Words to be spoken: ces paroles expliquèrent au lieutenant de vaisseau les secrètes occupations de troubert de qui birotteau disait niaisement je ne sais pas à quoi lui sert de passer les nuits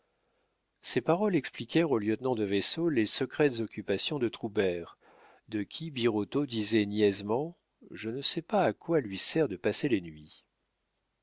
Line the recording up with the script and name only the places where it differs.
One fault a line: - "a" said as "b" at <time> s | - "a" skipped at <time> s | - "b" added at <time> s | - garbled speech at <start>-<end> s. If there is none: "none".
none